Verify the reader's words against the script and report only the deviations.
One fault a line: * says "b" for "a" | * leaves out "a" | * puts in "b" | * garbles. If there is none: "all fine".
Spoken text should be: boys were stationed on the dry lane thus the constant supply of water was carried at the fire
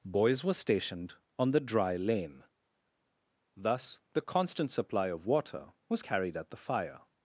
all fine